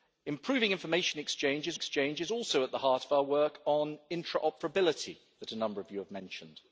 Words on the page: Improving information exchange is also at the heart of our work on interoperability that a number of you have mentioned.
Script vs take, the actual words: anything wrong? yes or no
yes